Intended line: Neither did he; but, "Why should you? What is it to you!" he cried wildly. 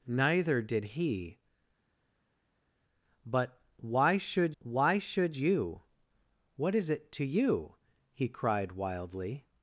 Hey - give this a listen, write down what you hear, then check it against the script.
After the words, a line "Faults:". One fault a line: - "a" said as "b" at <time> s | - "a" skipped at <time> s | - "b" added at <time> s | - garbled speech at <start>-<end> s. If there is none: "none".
Neither did he; but, "Why should why should you? What is it to you!" he cried wildly.
Faults:
- "why should" added at 4.6 s